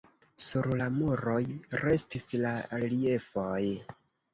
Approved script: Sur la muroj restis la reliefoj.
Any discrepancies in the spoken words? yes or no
no